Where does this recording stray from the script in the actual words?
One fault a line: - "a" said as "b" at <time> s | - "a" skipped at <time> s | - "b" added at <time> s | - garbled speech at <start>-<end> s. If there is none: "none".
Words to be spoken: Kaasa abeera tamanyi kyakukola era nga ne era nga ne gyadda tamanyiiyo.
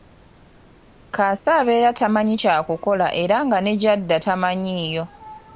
- "era nga ne" skipped at 3.7 s